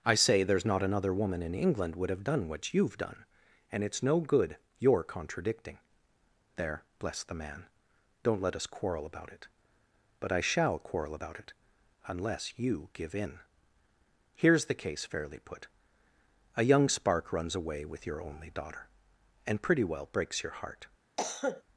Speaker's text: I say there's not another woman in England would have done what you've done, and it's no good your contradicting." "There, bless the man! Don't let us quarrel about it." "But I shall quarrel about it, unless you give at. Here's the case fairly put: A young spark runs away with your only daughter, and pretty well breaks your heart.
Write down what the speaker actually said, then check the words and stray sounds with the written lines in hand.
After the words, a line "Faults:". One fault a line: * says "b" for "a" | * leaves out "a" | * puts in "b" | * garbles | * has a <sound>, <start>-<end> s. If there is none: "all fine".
I say there's not another woman in England would have done what you've done, and it's no good your contradicting." "There, bless the man! Don't let us quarrel about it." "But I shall quarrel about it, unless you give in. Here's the case fairly put: A young spark runs away with your only daughter, and pretty well breaks your heart.
Faults:
* says "in" for "at"
* has a cough, 21.2-21.6 s